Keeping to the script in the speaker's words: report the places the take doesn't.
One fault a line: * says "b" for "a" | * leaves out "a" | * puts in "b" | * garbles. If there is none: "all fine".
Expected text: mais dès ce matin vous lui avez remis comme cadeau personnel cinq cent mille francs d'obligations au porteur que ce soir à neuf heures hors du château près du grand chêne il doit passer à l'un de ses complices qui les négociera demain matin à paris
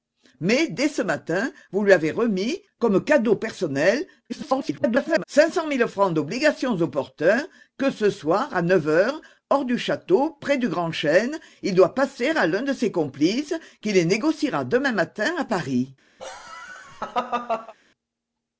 * garbles